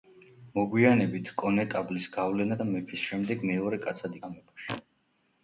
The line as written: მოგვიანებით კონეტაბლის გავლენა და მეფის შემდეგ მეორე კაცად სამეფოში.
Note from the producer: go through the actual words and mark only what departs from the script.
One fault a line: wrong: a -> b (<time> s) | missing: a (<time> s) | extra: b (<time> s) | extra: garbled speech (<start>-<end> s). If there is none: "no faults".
no faults